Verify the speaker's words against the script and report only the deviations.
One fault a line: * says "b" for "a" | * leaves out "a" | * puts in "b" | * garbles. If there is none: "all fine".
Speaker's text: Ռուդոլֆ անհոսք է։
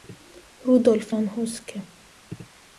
all fine